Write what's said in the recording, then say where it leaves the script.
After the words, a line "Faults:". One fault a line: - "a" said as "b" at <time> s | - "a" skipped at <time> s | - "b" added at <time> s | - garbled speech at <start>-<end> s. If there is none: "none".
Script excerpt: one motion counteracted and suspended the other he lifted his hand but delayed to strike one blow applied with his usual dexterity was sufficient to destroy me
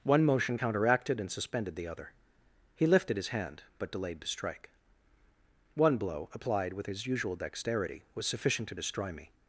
one motion counteracted and suspended the other he lifted his hand but delayed to strike one blow applied with his usual dexterity was sufficient to destroy me
Faults:
none